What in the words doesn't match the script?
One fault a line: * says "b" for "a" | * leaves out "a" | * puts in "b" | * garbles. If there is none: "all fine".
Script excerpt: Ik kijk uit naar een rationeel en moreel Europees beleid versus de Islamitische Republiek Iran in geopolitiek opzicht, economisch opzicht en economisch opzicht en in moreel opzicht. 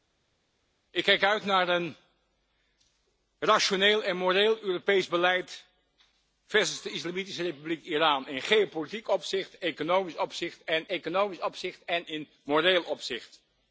all fine